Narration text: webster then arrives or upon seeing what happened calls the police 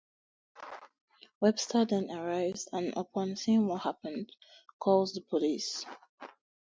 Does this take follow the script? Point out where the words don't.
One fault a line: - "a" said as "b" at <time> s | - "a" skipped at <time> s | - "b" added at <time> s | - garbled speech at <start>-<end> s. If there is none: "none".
- "or" said as "and" at 2.7 s